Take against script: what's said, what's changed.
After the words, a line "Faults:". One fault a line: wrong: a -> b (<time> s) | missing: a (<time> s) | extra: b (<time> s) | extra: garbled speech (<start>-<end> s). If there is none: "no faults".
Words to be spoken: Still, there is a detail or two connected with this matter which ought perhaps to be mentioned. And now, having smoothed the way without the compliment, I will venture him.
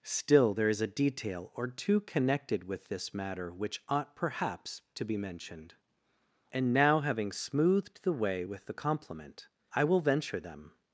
Still, there is a detail or two connected with this matter which ought perhaps to be mentioned. And now, having smoothed the way with the compliment, I will venture them.
Faults:
wrong: without -> with (8.4 s)
wrong: him -> them (10.4 s)